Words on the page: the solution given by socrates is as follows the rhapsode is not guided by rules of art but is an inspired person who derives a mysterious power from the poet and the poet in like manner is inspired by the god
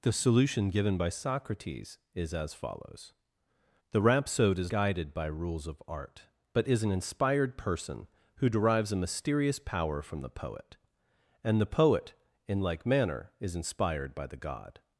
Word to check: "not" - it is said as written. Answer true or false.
false